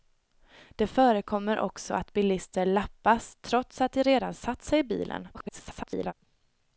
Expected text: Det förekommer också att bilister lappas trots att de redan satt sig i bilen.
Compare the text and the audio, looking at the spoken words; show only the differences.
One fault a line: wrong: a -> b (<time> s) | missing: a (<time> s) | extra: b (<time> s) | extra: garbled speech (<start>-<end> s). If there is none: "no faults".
extra: garbled speech (5.3-6.1 s)